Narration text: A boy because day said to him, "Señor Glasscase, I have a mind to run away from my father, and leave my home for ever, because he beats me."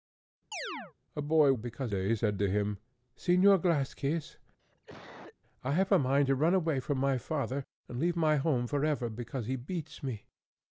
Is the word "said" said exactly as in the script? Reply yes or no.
yes